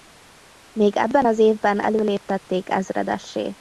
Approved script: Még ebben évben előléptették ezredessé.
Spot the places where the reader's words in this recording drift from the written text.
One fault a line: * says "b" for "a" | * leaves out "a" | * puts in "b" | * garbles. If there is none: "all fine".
* puts in "az"